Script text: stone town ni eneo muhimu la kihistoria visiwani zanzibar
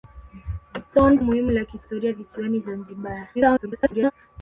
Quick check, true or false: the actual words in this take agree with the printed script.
false